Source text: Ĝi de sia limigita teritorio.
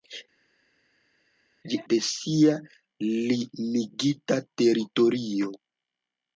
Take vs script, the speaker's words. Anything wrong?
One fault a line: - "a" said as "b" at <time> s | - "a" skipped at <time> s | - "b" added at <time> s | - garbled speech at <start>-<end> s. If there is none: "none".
none